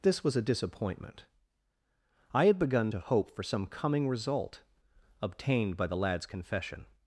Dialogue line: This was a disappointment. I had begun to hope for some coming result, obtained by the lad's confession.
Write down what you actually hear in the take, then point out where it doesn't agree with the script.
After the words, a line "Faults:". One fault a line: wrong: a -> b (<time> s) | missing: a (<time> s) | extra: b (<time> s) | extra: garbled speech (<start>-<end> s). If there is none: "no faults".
This was a disappointment. I had begun to hope for some coming result, obtained by the lad's confession.
Faults:
no faults